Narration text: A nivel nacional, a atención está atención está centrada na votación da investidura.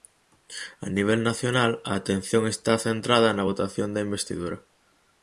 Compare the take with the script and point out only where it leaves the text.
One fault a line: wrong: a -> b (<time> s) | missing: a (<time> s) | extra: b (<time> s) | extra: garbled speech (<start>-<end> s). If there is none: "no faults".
missing: atención está (2.7 s)